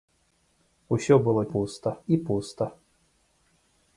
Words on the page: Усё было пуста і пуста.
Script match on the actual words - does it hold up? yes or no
yes